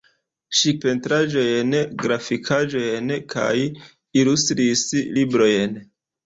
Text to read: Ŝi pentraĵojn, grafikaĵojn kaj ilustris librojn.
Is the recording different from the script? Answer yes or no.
no